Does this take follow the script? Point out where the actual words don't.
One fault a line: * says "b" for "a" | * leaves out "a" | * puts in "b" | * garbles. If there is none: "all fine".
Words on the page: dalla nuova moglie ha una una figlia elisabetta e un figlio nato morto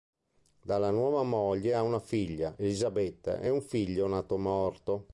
* leaves out "una"